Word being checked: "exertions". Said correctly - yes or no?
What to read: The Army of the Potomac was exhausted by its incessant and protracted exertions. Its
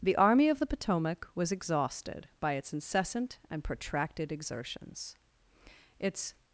yes